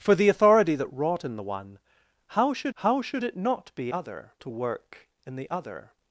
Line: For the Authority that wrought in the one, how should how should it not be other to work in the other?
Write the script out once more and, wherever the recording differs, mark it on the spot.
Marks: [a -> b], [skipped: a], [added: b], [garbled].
For the Authority that wrought in the one, how should how should it not be other to work in the other?